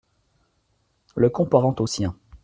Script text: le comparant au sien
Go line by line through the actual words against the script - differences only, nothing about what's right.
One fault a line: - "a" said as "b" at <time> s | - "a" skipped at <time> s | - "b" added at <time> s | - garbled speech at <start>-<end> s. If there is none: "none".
none